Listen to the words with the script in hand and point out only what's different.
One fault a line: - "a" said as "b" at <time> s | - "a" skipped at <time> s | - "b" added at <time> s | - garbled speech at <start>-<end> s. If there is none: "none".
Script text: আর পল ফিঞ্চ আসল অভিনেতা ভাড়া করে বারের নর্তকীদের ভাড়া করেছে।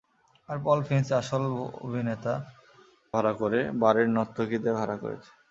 none